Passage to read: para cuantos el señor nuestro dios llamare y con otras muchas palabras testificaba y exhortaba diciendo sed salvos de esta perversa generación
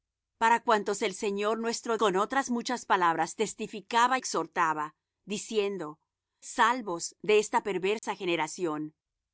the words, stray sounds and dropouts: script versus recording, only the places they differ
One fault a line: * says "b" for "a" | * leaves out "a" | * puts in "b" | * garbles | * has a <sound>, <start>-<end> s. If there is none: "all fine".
* leaves out "dios llamare y"
* leaves out "y"
* leaves out "sed"
* has a dropout, 8.0-8.0 s